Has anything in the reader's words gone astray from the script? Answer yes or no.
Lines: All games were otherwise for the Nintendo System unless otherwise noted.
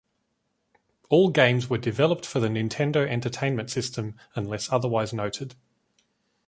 yes